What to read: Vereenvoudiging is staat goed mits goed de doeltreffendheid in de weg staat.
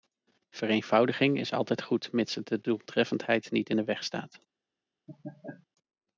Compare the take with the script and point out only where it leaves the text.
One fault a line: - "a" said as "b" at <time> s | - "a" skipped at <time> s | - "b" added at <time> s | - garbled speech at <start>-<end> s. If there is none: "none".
- "staat" said as "altijd" at 1.5 s
- "goed" said as "het" at 2.4 s
- "niet" added at 3.5 s